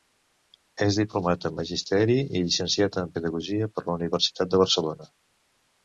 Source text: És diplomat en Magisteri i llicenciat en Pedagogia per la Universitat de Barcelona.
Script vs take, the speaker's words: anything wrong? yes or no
no